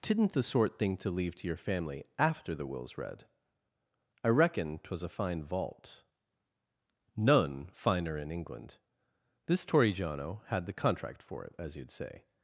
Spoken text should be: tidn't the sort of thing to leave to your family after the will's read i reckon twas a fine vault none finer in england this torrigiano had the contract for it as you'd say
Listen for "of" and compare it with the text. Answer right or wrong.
wrong